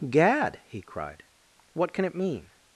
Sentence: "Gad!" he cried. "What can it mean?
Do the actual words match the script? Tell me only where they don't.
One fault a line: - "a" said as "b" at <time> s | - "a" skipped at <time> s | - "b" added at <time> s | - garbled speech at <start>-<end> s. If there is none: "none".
none